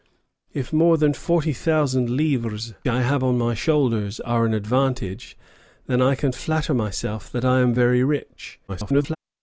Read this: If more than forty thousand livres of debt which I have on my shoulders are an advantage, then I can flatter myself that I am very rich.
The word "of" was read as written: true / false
false